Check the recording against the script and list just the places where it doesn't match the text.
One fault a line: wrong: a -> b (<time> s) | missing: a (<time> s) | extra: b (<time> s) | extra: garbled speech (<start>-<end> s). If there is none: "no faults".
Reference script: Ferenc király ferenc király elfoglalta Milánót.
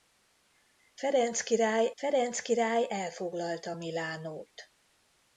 no faults